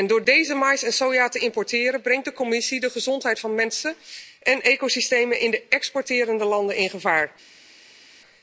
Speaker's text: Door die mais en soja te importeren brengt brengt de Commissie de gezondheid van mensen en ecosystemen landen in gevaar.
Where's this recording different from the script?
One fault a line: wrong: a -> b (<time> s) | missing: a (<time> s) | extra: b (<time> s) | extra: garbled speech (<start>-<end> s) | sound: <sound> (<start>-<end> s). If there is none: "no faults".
wrong: die -> deze (0.2 s)
missing: brengt (2.2 s)
extra: in de exporterende (5.4 s)